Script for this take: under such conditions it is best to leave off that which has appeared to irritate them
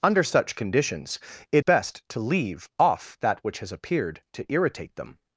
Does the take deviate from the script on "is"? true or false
true